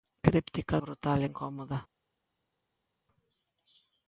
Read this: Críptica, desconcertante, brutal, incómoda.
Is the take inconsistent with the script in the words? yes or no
yes